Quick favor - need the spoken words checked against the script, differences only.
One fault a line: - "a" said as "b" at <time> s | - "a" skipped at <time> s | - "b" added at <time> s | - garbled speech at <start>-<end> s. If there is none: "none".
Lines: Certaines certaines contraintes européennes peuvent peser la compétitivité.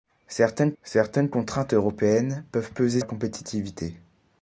none